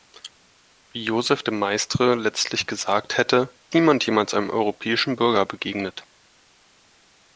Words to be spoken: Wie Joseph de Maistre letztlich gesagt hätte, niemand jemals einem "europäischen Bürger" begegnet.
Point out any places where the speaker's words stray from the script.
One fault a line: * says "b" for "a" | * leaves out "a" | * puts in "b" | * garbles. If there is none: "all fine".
all fine